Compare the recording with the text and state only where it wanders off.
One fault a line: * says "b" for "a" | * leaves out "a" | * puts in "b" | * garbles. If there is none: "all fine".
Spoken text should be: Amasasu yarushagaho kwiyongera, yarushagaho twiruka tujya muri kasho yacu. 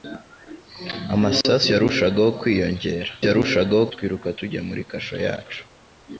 all fine